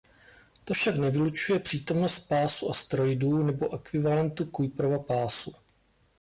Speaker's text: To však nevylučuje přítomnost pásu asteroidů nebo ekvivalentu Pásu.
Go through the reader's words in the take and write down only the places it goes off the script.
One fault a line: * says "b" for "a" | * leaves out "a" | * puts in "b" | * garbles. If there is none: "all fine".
* puts in "Kuiperova"